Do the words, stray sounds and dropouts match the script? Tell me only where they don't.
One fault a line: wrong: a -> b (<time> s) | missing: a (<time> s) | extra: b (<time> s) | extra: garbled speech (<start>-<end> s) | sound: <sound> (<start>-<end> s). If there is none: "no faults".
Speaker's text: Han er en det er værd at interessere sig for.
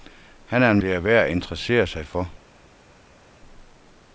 no faults